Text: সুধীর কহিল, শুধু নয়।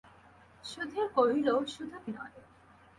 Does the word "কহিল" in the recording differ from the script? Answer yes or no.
no